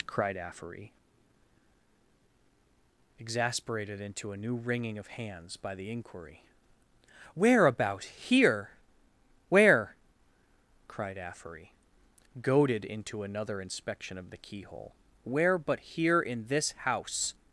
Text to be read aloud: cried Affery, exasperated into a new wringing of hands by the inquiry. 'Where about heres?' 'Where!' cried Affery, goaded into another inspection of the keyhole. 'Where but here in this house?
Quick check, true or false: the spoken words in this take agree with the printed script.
false